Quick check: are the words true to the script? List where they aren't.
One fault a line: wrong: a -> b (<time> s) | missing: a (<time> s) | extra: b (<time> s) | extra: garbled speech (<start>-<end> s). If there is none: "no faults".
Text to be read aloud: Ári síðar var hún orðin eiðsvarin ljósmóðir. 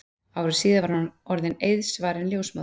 no faults